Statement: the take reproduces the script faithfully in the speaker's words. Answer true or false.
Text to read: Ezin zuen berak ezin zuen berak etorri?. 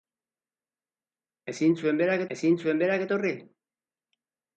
true